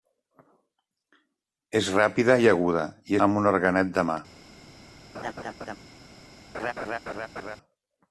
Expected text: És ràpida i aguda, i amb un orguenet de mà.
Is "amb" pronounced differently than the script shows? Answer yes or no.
no